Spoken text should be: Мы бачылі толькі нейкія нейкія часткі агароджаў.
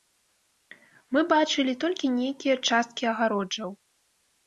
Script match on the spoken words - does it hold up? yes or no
no